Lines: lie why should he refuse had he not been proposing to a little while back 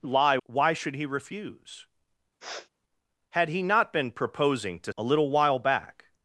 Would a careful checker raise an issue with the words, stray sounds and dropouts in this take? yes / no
yes